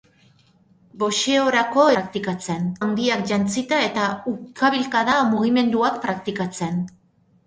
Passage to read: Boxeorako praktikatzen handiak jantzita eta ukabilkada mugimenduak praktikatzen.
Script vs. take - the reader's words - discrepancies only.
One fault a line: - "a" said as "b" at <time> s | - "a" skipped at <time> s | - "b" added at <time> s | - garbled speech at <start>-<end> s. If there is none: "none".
none